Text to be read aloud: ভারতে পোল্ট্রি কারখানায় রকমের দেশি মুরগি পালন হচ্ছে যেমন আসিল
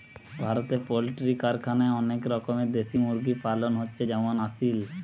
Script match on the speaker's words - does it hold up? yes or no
no